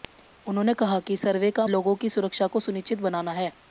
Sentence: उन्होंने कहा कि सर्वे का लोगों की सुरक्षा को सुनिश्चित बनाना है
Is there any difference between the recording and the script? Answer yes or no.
no